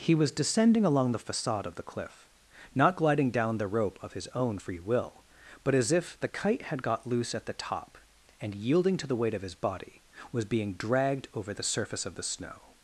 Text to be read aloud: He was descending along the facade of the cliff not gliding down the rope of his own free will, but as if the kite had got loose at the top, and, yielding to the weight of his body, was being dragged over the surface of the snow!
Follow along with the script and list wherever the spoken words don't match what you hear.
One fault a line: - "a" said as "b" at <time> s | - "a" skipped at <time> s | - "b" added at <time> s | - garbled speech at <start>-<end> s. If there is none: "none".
none